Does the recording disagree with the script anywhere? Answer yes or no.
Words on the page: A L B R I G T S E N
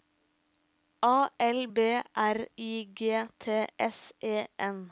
no